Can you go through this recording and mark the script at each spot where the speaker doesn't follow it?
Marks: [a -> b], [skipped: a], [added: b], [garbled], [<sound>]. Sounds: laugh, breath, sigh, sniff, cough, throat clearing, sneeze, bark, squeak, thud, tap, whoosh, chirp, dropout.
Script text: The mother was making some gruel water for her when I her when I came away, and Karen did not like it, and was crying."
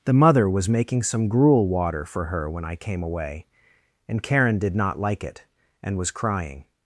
The mother was making some gruel water for her when I [skipped: her when I] came away, and Karen did not like it, and was crying."